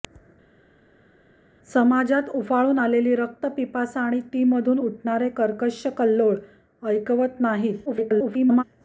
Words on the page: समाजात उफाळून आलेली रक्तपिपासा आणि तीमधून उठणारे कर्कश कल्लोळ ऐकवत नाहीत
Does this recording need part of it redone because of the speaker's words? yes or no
yes